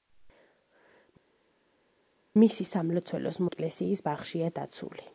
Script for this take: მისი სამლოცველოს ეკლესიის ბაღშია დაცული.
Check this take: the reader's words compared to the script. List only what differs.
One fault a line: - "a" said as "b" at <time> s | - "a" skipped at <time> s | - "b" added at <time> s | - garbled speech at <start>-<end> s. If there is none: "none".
none